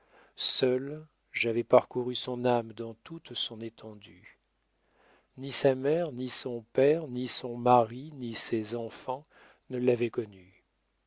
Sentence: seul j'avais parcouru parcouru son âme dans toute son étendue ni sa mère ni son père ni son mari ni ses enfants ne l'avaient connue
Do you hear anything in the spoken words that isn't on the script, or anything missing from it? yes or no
yes